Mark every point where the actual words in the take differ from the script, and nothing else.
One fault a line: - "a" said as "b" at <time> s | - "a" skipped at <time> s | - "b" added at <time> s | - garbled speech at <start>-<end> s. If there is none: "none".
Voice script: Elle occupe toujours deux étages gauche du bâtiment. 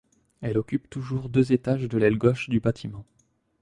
- "de l'aile" added at 1.8 s